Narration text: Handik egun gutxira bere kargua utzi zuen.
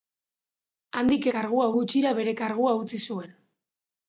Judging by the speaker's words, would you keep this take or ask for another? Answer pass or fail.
fail